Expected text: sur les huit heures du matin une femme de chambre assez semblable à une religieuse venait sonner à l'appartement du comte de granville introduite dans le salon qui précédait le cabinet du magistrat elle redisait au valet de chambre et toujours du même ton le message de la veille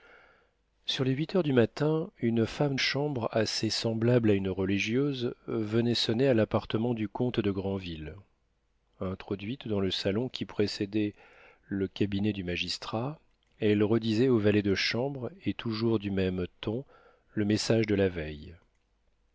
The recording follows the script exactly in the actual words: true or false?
false